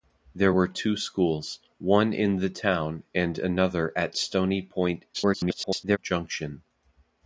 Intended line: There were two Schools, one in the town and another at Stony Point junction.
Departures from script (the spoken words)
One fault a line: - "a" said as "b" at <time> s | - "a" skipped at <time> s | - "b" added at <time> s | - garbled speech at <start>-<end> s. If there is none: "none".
- garbled speech at 5.1-6.0 s